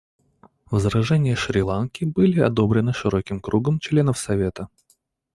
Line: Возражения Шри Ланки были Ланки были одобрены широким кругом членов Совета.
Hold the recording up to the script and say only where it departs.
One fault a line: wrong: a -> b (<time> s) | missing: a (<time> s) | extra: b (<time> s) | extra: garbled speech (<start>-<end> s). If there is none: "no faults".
missing: Ланки были (2.4 s)